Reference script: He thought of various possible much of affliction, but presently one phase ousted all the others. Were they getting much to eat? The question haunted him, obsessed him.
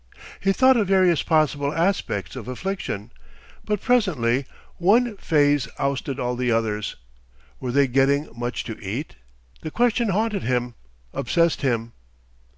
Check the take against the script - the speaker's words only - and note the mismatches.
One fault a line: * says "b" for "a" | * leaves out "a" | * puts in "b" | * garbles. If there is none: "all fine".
* says "aspects" for "much"